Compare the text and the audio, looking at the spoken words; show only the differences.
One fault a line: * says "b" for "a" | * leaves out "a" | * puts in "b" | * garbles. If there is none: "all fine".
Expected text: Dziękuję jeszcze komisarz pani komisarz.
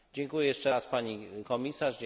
* says "raz" for "komisarz"